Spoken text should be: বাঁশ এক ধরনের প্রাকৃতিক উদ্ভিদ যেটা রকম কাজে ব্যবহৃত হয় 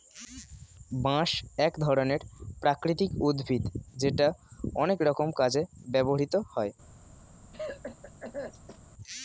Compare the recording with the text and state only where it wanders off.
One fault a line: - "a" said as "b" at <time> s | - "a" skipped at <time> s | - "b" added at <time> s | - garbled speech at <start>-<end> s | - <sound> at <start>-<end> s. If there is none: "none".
- "অনেক" added at 4.8 s
- cough at 7.5-8.8 s